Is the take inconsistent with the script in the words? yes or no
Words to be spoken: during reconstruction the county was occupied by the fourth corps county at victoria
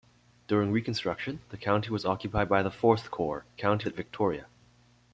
no